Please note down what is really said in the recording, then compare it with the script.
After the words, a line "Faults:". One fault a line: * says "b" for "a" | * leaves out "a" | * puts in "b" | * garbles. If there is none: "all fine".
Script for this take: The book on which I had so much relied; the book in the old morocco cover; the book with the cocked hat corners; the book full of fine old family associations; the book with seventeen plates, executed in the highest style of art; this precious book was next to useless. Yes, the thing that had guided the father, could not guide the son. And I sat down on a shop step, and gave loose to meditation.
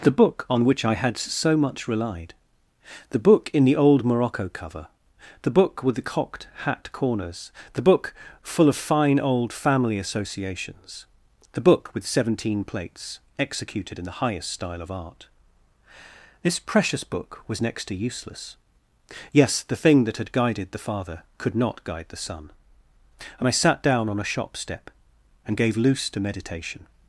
The book on which I had so much relied; the book in the old morocco cover; the book with the cocked hat corners; the book full of fine old family associations; the book with seventeen plates, executed in the highest style of art; this precious book was next to useless. Yes, the thing that had guided the father, could not guide the son. And I sat down on a shop step, and gave loose to meditation.
Faults:
all fine